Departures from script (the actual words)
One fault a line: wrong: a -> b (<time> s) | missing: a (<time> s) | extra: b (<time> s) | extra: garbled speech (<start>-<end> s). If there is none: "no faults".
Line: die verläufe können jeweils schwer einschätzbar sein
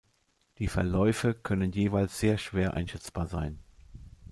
extra: sehr (2.2 s)